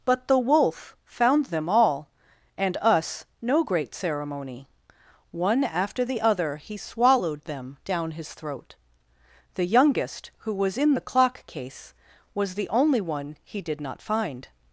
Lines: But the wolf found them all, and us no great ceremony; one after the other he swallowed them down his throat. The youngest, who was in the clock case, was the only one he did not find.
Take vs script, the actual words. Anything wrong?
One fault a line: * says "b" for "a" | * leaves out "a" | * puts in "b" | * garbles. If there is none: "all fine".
all fine